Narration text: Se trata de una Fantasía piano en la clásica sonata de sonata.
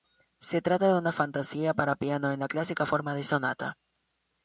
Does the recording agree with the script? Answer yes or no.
no